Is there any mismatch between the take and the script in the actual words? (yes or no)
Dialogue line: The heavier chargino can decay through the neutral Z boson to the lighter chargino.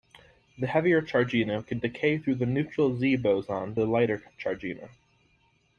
yes